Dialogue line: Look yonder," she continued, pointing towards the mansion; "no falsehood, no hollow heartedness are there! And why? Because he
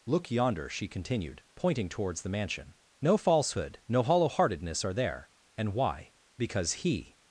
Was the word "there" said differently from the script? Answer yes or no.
no